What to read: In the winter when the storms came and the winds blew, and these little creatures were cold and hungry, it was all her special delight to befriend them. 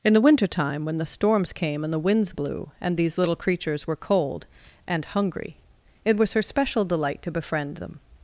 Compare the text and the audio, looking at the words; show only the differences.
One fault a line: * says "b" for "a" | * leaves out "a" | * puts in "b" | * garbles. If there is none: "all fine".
* puts in "time"
* leaves out "all"